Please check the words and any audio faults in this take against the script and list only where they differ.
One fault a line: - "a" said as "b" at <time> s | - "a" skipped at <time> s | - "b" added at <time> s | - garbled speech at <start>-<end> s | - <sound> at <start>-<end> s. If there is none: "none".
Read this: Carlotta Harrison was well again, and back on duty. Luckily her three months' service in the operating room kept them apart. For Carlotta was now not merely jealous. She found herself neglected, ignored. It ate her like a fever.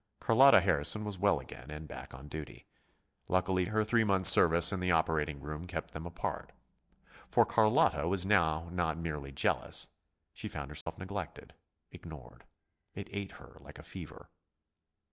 - dropout at 10.8-10.9 s